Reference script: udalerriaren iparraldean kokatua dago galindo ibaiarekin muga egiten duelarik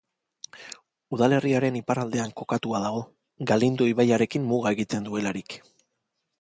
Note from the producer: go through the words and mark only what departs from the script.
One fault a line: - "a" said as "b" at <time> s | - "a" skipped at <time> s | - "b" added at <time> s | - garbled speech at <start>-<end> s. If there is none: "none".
none